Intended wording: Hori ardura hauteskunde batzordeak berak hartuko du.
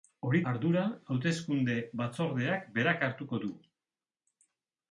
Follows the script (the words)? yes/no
yes